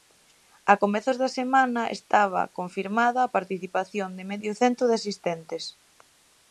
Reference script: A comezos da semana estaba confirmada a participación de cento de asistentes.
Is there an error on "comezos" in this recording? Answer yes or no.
no